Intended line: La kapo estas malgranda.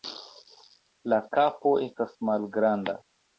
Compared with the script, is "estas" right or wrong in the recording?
right